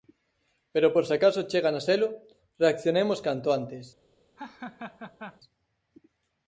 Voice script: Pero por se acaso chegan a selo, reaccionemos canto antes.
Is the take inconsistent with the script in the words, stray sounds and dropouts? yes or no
yes